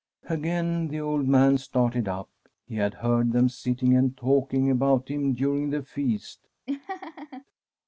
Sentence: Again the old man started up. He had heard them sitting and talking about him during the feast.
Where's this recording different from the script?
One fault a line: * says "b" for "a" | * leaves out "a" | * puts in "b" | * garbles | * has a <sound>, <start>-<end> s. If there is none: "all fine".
* has a laugh, 6.7-7.4 s